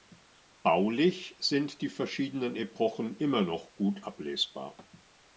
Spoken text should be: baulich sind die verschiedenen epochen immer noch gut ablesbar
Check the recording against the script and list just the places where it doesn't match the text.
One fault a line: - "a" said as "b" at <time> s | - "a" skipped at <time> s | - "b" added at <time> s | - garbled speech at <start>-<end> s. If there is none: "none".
none